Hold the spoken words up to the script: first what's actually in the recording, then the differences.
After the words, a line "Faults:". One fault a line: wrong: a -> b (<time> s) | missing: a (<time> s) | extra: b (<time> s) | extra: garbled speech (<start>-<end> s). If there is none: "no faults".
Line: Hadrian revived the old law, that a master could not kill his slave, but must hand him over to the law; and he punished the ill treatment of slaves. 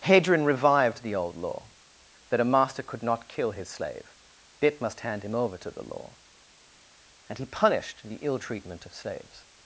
Hadrian revived the old law, that a master could not kill his slave, bit must hand him over to the law; and he punished the ill treatment of slaves.
Faults:
wrong: but -> bit (4.6 s)